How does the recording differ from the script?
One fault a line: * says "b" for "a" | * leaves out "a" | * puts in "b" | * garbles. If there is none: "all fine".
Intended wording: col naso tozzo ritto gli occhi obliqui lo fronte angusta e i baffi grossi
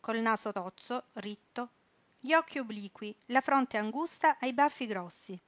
* says "la" for "lo"